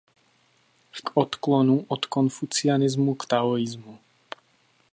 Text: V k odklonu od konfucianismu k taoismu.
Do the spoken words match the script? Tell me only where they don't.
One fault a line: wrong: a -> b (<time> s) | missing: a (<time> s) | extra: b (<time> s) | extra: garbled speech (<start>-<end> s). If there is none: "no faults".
no faults